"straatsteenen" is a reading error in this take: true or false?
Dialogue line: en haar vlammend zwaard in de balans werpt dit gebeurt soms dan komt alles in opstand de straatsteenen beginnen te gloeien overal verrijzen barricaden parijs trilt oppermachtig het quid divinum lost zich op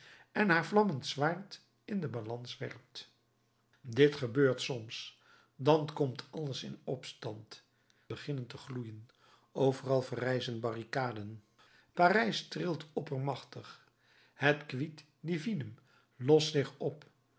true